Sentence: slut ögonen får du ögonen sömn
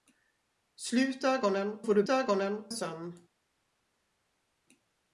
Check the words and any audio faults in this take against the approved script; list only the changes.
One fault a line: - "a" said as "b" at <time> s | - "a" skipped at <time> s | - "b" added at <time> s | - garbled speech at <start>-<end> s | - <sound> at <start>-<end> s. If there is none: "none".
none